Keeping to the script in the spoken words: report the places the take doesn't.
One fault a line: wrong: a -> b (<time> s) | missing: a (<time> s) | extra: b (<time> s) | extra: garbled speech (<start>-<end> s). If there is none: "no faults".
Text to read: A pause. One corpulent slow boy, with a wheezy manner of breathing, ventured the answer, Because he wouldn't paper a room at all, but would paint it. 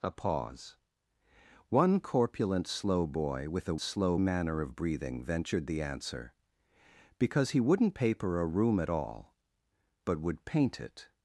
wrong: wheezy -> slow (3.8 s)